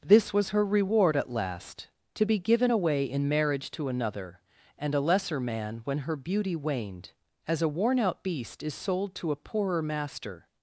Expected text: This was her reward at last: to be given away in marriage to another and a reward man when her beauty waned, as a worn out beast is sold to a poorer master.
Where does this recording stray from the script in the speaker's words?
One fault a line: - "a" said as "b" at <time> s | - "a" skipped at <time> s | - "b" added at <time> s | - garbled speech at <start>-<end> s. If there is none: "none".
- "reward" said as "lesser" at 5.0 s